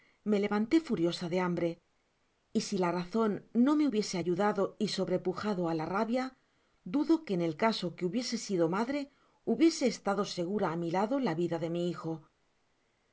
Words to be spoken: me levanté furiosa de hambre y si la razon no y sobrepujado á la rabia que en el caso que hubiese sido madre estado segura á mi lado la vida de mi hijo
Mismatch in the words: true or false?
true